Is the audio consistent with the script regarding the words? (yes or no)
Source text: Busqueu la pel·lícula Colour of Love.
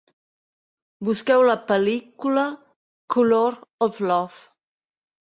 yes